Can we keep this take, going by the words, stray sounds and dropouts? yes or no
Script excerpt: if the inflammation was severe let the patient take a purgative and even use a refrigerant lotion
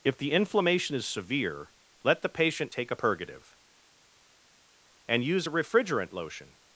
no